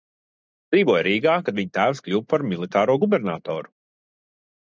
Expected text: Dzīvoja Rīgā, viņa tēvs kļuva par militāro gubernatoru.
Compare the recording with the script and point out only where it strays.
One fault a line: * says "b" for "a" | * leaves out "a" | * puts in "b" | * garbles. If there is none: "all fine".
* puts in "kad"